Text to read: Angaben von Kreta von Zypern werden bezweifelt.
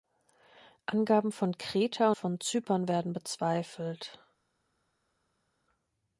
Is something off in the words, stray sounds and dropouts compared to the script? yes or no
no